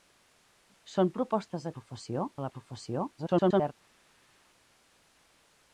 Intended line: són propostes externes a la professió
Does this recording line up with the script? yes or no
no